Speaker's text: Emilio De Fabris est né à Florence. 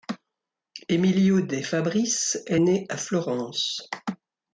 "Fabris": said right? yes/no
yes